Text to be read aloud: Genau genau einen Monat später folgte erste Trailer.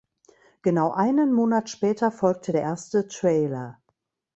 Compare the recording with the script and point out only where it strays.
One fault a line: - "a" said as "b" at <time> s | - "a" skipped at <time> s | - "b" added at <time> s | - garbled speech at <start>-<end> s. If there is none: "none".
- "genau" skipped at 0.9 s
- "der" added at 2.5 s